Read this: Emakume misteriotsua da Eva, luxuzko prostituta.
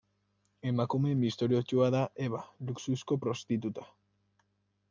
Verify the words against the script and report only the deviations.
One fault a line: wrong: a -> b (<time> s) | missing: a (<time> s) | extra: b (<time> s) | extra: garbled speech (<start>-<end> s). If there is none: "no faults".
no faults